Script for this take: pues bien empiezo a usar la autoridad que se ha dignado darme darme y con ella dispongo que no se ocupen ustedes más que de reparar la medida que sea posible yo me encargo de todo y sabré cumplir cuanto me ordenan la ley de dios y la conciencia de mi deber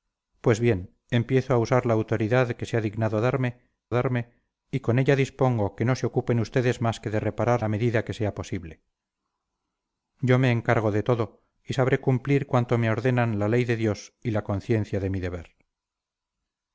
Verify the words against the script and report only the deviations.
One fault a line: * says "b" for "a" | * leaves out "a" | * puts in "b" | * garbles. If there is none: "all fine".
all fine